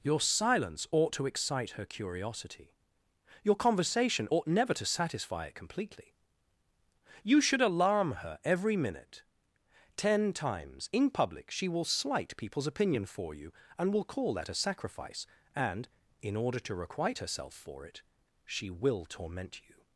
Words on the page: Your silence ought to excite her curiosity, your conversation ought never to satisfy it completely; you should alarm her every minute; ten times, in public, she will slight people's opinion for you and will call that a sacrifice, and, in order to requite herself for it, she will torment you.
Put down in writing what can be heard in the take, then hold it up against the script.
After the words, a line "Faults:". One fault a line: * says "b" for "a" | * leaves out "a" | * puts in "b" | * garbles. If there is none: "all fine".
Your silence ought to excite her curiosity, your conversation ought never to satisfy it completely; you should alarm her every minute; ten times, in public, she will slight people's opinion for you and will call that a sacrifice, and, in order to requite herself for it, she will torment you.
Faults:
all fine